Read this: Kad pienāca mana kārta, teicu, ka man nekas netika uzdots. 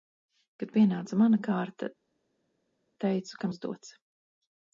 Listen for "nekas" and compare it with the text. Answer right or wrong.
wrong